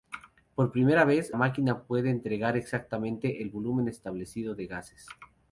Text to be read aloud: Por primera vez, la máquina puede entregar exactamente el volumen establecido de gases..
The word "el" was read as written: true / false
true